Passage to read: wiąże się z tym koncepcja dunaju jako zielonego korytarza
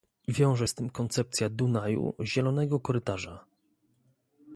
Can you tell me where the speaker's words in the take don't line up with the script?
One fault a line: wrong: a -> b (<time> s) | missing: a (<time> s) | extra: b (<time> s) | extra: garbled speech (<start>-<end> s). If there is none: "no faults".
missing: się (0.7 s)
missing: jako (2.1 s)